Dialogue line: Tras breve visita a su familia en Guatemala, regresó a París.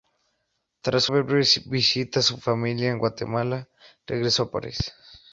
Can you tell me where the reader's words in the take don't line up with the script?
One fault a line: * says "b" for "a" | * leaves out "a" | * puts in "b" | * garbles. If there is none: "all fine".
all fine